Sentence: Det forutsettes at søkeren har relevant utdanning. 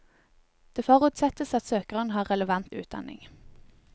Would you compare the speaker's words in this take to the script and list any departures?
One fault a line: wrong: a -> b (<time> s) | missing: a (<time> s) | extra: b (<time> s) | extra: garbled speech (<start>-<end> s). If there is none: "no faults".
no faults